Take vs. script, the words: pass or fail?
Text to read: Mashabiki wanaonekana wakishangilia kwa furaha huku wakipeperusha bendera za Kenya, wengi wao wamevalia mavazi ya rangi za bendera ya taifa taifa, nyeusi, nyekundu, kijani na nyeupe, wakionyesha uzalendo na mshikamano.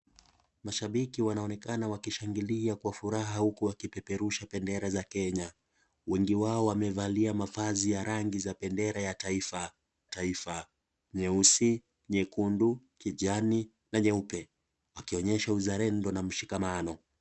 pass